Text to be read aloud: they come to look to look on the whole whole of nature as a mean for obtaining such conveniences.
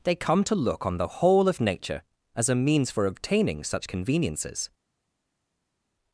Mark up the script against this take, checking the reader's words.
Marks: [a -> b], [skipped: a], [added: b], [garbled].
they come to look [skipped: to look] on the whole [skipped: whole] of nature as a [mean -> means] for obtaining such conveniences.